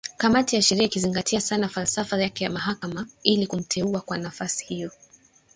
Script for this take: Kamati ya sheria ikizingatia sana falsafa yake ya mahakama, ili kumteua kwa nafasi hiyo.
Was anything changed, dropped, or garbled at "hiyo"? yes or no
no